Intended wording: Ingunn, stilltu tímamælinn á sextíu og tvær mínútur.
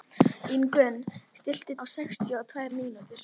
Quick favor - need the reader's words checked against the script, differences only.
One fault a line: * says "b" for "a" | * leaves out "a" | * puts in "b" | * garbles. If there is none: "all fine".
* leaves out "tímamælinn"